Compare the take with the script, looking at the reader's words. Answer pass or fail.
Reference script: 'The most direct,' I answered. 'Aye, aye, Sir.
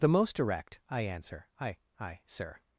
fail